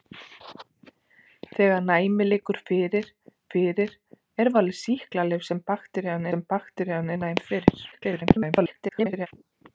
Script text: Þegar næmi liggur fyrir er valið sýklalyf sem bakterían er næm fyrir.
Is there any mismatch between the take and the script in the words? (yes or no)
yes